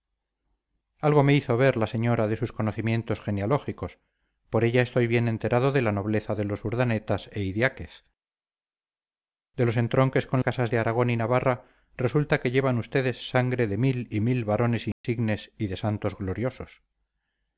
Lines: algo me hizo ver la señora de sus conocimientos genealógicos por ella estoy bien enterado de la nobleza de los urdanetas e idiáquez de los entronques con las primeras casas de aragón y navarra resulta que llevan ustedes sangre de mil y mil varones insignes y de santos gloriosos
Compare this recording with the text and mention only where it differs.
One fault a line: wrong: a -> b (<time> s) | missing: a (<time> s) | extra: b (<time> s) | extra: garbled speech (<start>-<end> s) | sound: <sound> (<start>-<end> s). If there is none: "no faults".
missing: las primeras (10.4 s)
sound: dropout (14.9-15.0 s)